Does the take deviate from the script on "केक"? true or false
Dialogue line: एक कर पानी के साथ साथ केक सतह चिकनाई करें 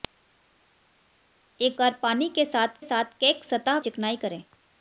false